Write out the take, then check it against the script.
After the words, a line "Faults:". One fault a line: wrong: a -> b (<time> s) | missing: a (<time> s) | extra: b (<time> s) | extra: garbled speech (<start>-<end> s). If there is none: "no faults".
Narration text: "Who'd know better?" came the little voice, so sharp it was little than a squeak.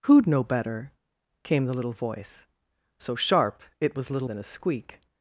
"Who'd know better?" came the little voice, so sharp it was little than a squeak.
Faults:
no faults